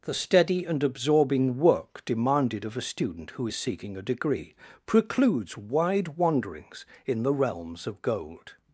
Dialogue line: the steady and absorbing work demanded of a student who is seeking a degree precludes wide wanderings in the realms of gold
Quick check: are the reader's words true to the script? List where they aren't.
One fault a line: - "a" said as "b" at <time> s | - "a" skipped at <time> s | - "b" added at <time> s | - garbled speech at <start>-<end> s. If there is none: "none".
none